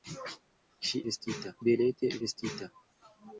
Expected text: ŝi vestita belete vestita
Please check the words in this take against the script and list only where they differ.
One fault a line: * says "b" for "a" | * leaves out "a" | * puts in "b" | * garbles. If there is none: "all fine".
all fine